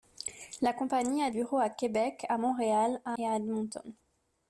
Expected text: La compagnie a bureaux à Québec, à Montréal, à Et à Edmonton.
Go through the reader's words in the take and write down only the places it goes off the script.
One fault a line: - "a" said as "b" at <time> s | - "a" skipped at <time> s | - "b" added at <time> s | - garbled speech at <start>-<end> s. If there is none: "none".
none